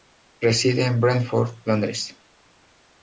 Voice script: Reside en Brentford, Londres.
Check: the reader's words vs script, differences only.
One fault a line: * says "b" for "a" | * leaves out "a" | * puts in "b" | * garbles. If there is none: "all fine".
all fine